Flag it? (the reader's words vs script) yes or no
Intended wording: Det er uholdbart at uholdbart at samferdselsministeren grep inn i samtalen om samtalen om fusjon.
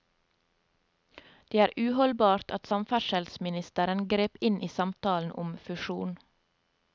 yes